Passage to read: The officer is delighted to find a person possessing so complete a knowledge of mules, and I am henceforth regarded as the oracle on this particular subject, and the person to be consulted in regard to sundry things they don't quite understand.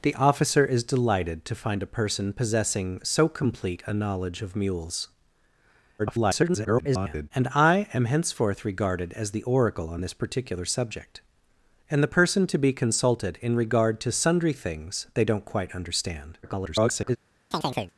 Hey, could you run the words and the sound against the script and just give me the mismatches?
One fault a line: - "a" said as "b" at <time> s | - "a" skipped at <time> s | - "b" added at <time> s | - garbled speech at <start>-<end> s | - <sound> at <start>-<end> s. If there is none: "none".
- garbled speech at 6.0-7.3 s
- garbled speech at 16.4-17.2 s
- chirp at 17.5-17.9 s